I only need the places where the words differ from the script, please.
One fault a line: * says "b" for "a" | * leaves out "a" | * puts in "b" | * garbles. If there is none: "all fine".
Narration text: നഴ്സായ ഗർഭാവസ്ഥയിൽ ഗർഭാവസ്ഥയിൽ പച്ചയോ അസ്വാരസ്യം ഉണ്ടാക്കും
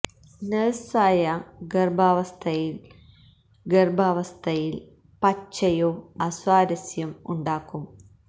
all fine